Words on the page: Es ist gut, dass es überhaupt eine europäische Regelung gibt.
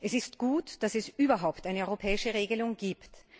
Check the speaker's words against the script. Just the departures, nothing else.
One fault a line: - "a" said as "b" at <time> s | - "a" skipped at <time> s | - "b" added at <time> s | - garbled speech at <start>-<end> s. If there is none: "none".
none